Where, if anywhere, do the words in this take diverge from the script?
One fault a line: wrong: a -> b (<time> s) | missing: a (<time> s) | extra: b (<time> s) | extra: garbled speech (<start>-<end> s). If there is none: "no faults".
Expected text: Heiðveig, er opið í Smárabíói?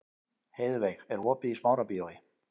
no faults